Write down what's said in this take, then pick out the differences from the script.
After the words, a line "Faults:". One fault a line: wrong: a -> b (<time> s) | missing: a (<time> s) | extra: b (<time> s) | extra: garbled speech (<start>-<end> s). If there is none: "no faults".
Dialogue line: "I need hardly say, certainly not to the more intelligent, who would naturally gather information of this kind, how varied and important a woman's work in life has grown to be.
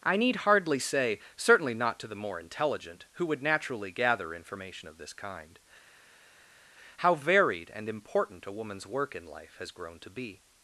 "I need hardly say, certainly not to the more intelligent, who would naturally gather information of this kind, how varied and important a woman's work in life has grown to be.
Faults:
no faults